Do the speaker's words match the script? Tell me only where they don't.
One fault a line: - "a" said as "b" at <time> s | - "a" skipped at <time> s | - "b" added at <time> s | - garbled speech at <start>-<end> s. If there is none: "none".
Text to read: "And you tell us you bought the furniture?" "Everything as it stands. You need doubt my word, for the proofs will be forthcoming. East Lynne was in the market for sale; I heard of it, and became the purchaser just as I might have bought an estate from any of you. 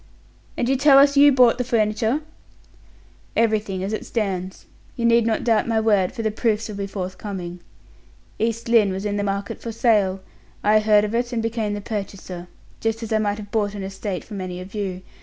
- "not" added at 5.3 s